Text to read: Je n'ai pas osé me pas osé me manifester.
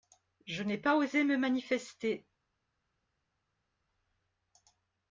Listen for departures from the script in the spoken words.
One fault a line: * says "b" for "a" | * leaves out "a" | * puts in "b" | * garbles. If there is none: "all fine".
* leaves out "pas osé me"